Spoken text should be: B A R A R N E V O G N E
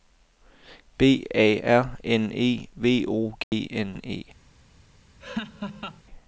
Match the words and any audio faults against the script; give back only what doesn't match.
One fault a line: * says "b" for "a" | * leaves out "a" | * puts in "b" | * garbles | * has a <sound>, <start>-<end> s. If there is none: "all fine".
* leaves out "A R"
* has a dropout, 3.4-3.5 s
* has a laugh, 5.2-6.0 s